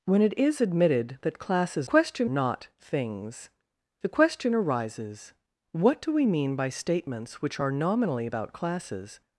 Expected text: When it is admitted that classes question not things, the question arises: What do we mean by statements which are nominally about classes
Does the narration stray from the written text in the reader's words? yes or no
no